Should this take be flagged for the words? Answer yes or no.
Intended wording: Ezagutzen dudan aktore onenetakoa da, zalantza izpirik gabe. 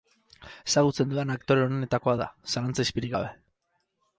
no